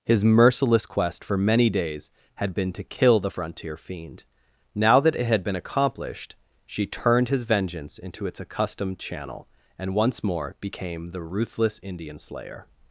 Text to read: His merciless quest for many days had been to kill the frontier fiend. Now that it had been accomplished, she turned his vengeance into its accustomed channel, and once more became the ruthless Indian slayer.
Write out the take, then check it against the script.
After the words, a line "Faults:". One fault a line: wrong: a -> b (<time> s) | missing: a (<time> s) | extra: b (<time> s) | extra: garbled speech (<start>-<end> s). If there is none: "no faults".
His merciless quest for many days had been to kill the frontier fiend. Now that it had been accomplished, she turned his vengeance into its accustomed channel, and once more became the ruthless Indian slayer.
Faults:
no faults